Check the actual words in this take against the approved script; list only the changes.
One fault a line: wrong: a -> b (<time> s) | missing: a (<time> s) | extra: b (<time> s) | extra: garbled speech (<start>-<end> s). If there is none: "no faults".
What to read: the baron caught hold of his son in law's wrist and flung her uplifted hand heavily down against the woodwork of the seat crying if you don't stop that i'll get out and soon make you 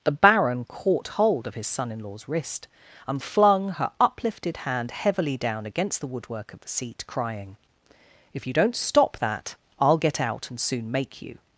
no faults